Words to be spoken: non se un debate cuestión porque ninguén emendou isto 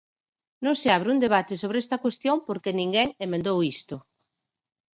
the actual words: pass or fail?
fail